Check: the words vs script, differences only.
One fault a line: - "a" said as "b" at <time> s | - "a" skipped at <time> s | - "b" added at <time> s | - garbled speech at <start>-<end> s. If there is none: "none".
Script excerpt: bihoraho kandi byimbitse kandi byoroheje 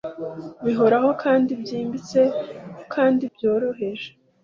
none